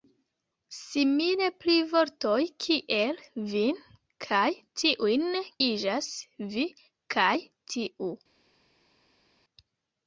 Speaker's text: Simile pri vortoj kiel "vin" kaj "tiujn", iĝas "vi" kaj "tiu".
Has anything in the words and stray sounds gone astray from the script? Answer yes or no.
no